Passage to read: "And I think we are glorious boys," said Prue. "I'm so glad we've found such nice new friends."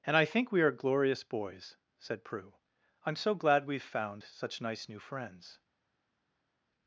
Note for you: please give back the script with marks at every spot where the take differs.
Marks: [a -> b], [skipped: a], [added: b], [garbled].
"And I think we are glorious boys," said Prue. "I'm so glad we've found such nice new friends."